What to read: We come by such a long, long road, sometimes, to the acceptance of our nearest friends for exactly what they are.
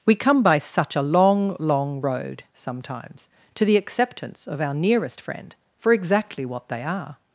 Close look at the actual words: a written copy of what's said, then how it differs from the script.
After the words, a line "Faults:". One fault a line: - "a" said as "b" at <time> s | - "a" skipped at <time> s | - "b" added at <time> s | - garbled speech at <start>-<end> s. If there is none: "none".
We come by such a long, long road, sometimes, to the acceptance of our nearest friend for exactly what they are.
Faults:
- "friends" said as "friend" at 5.2 s